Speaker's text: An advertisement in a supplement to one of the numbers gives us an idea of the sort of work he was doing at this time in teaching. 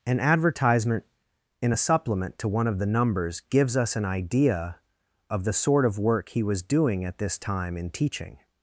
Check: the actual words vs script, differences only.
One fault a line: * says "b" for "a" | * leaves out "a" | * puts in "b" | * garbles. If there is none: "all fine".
all fine